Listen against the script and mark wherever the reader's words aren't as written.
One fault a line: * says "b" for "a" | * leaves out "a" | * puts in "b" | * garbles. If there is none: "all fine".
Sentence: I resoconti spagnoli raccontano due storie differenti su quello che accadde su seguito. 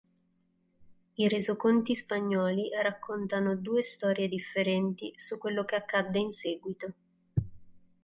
* says "in" for "su"